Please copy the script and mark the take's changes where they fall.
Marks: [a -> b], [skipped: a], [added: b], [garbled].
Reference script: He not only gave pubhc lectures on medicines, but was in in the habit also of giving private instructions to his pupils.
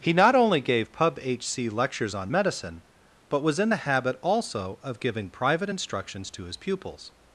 He not only gave pubhc lectures on [medicines, -> medicine] but was in [skipped: in] the habit also of giving private instructions to his pupils.